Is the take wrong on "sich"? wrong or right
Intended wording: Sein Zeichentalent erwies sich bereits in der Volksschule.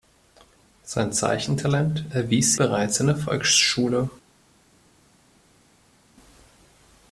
wrong